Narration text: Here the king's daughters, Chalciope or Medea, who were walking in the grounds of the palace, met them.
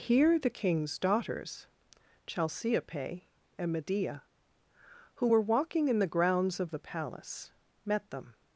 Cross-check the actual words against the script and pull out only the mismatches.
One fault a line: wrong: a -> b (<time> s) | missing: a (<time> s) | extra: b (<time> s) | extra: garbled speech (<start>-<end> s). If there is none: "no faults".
wrong: or -> and (3.6 s)